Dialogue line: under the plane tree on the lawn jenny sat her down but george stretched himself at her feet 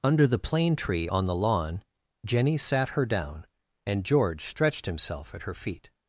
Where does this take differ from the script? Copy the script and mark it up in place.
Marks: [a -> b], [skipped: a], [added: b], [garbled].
under the plane tree on the lawn jenny sat her down [but -> and] george stretched himself at her feet